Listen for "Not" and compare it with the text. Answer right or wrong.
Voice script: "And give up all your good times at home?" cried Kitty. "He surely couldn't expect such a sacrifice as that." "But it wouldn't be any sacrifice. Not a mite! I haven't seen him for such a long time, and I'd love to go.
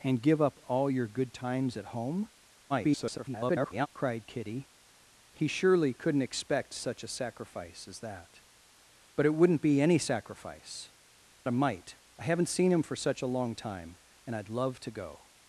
wrong